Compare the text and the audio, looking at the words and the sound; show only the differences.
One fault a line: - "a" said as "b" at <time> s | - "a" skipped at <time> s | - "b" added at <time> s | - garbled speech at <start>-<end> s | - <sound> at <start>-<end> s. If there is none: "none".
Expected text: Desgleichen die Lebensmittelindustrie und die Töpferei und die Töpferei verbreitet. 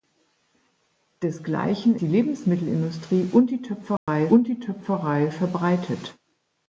- dropout at 4.0-4.1 s